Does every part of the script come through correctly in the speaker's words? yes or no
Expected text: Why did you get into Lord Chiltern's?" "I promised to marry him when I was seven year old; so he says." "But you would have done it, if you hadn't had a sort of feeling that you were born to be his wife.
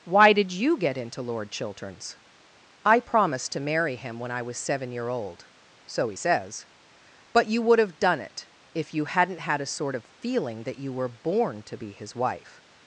yes